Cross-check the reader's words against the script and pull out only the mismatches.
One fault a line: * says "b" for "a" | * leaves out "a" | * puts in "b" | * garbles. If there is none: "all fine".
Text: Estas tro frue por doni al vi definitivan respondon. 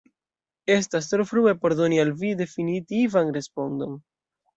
all fine